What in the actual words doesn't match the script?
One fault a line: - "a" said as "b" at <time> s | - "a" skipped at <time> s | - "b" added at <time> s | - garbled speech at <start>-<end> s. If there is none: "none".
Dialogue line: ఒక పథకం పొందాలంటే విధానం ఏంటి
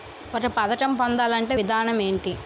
none